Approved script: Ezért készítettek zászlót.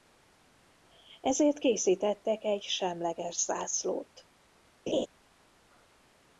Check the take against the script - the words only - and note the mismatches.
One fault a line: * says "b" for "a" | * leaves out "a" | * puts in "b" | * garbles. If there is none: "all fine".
* puts in "egy semleges"